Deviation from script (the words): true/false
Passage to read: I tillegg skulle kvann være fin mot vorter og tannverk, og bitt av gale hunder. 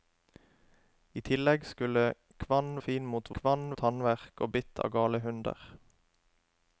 true